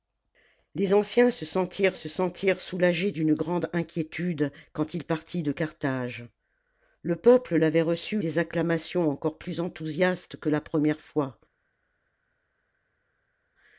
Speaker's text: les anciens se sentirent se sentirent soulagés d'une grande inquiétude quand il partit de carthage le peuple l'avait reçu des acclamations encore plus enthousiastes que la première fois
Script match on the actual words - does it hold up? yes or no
yes